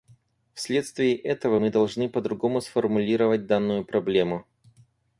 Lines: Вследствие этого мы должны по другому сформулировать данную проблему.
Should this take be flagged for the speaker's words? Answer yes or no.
no